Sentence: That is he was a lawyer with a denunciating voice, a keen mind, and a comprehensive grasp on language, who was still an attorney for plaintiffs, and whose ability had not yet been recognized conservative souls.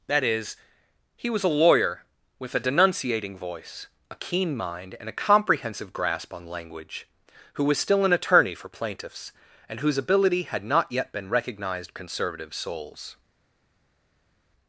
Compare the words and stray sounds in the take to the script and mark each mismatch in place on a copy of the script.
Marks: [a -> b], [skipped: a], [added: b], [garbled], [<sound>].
That is he was a lawyer with a denunciating voice, a keen mind, and a comprehensive grasp on language, who was still an attorney for plaintiffs, and whose ability had not yet been recognized conservative souls.